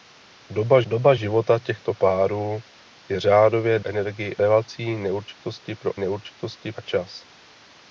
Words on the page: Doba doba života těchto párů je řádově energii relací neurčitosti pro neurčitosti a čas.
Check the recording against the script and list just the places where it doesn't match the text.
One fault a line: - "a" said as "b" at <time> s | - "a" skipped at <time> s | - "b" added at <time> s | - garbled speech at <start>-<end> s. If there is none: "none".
none